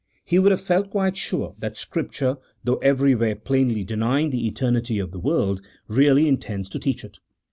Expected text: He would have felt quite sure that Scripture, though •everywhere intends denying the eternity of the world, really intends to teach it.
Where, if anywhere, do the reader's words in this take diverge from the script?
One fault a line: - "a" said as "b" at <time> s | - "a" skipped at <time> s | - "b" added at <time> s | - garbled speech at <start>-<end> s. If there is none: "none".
- "intends" said as "plainly" at 3.4 s